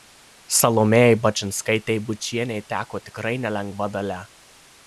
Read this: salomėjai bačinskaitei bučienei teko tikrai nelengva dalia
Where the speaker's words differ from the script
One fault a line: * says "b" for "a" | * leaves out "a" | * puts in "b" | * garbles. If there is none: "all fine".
all fine